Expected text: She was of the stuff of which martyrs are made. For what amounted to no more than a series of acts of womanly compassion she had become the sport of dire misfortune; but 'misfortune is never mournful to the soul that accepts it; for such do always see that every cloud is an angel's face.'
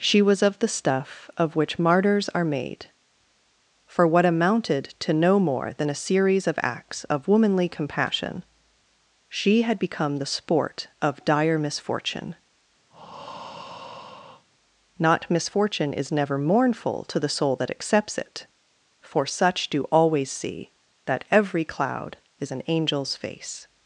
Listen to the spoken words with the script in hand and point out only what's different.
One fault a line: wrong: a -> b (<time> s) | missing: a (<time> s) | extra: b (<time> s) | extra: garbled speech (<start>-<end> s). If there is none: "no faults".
wrong: but -> not (15.0 s)